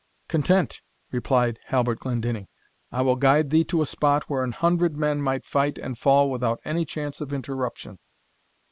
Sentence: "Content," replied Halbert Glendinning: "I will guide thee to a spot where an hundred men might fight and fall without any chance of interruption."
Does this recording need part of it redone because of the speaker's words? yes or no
no